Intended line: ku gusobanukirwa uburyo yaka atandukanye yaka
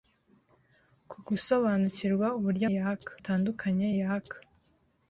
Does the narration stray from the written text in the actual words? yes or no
no